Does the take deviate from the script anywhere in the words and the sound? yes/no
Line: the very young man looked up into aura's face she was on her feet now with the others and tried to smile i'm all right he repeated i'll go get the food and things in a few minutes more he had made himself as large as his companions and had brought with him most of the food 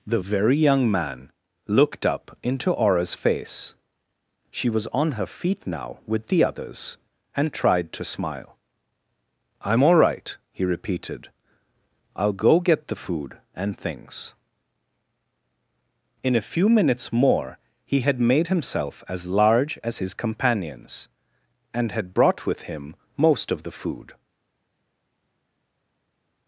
no